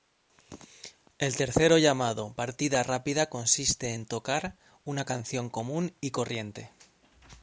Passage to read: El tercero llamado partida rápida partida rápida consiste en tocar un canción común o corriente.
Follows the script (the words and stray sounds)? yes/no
no